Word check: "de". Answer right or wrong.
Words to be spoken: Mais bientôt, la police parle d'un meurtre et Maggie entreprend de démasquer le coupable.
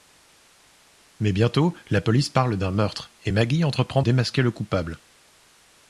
wrong